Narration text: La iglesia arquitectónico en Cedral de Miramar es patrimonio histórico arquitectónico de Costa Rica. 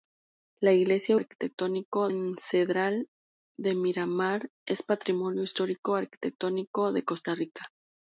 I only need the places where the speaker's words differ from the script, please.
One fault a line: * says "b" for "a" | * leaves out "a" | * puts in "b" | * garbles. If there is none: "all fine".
all fine